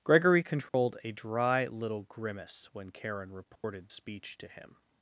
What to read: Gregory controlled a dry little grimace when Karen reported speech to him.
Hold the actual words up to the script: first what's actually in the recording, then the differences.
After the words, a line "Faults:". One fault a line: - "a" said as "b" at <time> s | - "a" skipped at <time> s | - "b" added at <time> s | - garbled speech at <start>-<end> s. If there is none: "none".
Gregory controlled a dry little grimace when Karen reported speech to him.
Faults:
none